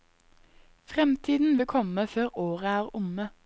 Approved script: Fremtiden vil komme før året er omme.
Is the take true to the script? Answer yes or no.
yes